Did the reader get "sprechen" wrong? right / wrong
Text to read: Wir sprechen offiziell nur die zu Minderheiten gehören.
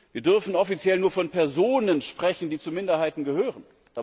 wrong